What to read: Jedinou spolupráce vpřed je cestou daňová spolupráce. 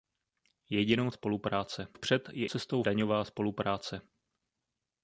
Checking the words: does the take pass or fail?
pass